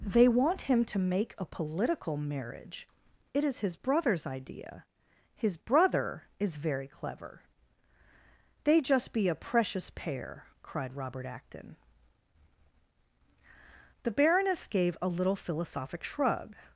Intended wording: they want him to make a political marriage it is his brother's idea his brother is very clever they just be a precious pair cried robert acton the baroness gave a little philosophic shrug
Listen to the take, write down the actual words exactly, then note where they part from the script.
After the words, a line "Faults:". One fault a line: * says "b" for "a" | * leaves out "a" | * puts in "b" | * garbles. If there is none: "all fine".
they want him to make a political marriage it is his brother's idea his brother is very clever they just be a precious pair cried robert acton the baroness gave a little philosophic shrug
Faults:
all fine